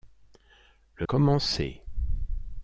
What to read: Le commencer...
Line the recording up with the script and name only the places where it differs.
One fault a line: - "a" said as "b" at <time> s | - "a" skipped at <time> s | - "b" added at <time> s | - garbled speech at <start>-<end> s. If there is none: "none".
none